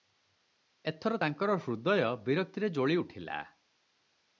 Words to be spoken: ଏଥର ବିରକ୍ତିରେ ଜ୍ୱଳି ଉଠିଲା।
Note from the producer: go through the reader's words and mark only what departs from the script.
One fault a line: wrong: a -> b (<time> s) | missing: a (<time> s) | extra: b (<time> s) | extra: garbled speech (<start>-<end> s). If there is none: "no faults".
extra: ତାଙ୍କର ହୃଦୟ (1.2 s)